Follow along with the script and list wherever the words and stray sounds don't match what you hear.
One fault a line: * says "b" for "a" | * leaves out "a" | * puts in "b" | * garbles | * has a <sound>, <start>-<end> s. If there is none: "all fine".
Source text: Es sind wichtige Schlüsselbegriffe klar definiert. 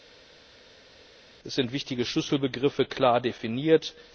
all fine